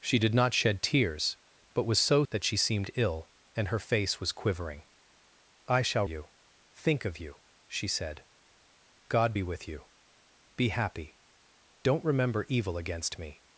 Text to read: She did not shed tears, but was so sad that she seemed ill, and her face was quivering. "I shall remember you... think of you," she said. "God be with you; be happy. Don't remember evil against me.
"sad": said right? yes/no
no